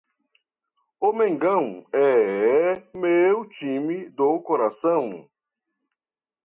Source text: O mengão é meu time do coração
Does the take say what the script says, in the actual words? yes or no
yes